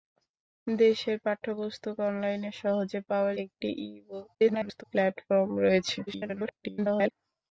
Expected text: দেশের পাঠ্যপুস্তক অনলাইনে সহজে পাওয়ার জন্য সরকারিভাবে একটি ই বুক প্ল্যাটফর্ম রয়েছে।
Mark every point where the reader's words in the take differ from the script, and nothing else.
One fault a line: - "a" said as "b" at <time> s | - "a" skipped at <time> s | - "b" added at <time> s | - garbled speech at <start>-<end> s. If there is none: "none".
- "জন্য সরকারিভাবে" skipped at 3.4 s
- garbled speech at 4.3-4.8 s
- garbled speech at 6.1-7.1 s